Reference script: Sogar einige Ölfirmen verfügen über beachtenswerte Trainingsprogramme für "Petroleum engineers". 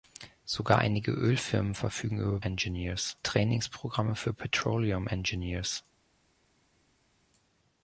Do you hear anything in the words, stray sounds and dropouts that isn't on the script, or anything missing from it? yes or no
yes